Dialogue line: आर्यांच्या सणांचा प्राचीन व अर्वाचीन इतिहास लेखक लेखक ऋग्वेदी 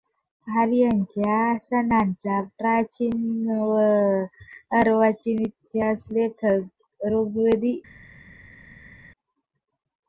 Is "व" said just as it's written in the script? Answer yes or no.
yes